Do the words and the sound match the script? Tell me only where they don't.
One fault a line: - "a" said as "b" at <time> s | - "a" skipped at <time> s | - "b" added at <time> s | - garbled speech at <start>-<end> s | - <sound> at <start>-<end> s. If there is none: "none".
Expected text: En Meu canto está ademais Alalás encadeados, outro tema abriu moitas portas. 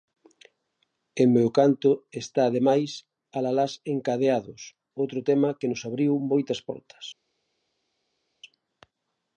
- "que nos" added at 5.6 s